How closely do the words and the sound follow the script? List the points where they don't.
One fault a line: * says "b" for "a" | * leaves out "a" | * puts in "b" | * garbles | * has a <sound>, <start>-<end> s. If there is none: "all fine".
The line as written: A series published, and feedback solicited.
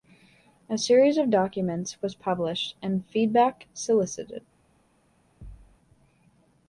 * puts in "of documents was"
* has a thud, 5.4-5.8 s